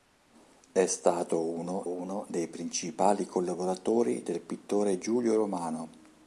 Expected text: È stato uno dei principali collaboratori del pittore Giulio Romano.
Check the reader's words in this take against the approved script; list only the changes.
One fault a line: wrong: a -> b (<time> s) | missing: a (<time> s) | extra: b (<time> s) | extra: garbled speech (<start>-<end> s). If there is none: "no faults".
extra: uno (1.8 s)